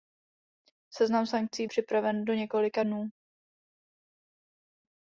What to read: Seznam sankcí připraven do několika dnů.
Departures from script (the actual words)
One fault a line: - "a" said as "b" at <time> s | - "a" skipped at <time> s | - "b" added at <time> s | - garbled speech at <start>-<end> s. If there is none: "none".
none